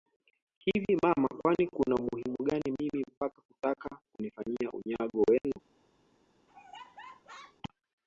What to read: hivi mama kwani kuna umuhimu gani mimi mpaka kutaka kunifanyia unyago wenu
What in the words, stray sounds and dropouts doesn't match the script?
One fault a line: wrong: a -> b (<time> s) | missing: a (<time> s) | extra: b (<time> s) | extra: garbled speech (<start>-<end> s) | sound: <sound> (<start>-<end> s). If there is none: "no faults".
sound: dropout (5.4-5.4 s)
sound: laugh (6.5-7.6 s)